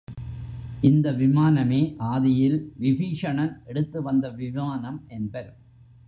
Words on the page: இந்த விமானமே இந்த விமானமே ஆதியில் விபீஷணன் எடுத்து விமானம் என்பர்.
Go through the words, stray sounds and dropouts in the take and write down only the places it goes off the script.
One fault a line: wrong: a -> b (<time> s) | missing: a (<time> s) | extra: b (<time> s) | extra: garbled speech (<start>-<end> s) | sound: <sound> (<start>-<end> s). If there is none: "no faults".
missing: இந்த விமானமே (1.8 s)
extra: வந்த (4.0 s)